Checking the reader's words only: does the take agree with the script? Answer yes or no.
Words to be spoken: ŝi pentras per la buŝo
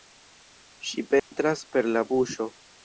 yes